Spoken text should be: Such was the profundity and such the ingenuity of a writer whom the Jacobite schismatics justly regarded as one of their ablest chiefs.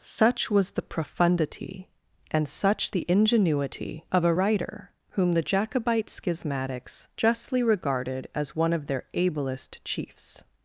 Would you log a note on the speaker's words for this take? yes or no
no